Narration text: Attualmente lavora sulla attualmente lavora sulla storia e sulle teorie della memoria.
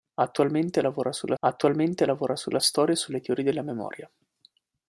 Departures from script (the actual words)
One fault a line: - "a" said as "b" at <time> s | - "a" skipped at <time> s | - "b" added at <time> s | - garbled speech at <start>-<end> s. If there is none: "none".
none